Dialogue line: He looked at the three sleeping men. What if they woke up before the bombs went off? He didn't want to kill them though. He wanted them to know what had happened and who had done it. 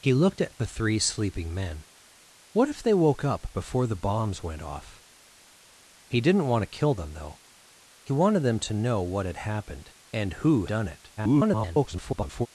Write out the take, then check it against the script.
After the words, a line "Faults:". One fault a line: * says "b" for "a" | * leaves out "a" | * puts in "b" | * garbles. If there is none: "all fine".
He looked at the three sleeping men. What if they woke up before the bombs went off? He didn't want to kill them though. He wanted them to know what had happened and who done it. [garbled]
Faults:
* leaves out "had"
* garbles